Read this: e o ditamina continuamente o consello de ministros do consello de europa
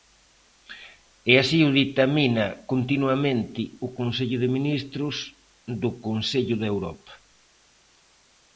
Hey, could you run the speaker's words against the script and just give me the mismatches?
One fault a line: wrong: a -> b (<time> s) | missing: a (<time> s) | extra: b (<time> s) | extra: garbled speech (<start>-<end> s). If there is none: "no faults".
extra: así (1.4 s)